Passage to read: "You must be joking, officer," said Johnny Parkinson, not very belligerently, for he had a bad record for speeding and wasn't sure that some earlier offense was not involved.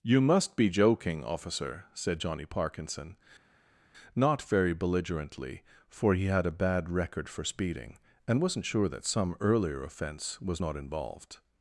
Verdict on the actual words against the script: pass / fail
pass